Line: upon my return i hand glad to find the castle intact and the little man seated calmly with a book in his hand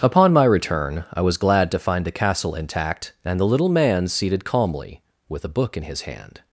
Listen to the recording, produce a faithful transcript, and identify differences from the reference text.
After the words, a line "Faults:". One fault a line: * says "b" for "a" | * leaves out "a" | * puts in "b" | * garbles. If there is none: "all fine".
upon my return i was glad to find the castle intact and the little man seated calmly with a book in his hand
Faults:
* says "was" for "hand"